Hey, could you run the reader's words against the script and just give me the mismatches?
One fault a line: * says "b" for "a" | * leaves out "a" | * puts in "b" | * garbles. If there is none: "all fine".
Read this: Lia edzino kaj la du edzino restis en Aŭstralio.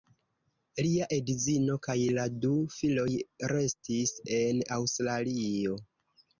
* says "filoj" for "edzino"